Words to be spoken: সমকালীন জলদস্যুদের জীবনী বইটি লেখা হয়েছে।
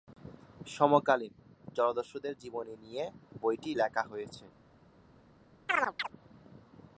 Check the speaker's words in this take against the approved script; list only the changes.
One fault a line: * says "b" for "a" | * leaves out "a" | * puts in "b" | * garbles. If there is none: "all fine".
* puts in "নিয়ে"